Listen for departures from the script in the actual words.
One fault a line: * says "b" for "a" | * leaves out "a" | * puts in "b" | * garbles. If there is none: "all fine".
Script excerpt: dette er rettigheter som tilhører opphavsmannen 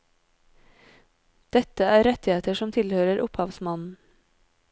all fine